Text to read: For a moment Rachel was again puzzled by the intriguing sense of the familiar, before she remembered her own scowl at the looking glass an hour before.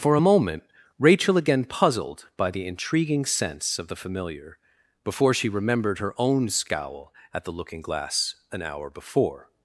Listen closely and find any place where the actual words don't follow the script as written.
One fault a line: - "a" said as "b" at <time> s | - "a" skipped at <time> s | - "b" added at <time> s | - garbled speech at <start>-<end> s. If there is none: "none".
- "was" skipped at 1.4 s